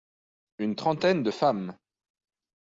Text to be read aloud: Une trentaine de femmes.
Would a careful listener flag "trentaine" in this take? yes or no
no